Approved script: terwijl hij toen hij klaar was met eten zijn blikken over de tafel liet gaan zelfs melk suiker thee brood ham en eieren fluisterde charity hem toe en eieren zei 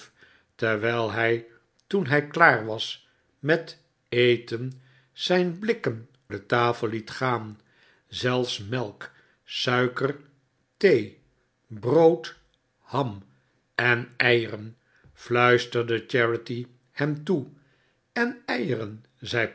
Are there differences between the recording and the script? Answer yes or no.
yes